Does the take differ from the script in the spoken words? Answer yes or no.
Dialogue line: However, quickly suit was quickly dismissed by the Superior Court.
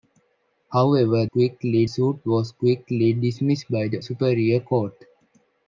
no